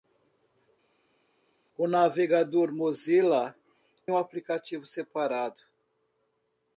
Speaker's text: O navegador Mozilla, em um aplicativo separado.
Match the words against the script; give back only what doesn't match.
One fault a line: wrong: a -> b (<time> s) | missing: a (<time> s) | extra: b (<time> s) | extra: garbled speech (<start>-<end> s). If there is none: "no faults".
missing: em (3.6 s)